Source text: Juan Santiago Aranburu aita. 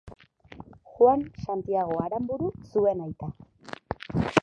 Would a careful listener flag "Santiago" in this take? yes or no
no